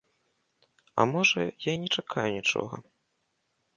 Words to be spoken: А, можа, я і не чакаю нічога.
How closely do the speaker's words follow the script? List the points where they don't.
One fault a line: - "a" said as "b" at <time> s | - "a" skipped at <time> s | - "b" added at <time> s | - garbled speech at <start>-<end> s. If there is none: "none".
none